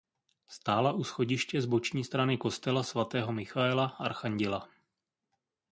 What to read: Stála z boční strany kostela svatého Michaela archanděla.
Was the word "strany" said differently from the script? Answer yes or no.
no